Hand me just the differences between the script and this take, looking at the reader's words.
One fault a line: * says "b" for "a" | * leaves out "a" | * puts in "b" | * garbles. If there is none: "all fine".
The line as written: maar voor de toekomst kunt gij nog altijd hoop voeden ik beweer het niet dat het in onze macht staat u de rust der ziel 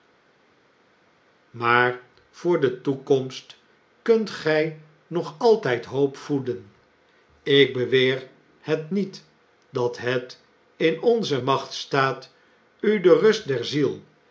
all fine